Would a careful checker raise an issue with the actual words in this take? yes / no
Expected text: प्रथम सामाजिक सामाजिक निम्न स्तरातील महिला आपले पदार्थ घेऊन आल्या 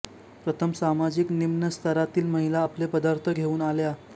yes